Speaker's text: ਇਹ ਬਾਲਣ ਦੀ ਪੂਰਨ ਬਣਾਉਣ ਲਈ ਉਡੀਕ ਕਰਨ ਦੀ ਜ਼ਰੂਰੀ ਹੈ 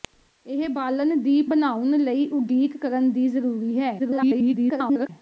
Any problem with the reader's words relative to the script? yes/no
yes